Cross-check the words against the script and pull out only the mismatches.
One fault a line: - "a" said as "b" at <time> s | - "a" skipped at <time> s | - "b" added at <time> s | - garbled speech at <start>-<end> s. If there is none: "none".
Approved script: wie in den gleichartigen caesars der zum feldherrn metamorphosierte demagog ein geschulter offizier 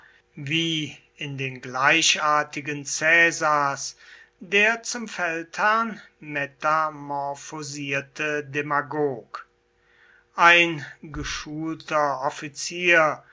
none